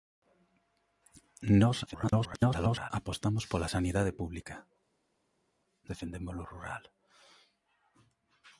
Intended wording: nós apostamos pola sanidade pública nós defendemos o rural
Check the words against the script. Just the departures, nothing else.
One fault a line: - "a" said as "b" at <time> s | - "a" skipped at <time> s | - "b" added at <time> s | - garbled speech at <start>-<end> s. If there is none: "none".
- garbled speech at 1.9-2.9 s
- "nós" skipped at 4.6 s